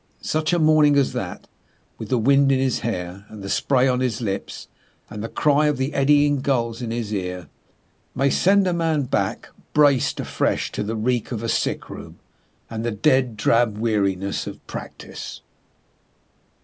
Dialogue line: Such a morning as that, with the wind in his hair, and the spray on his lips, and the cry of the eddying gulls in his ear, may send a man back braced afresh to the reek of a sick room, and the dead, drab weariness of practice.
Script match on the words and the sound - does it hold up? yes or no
yes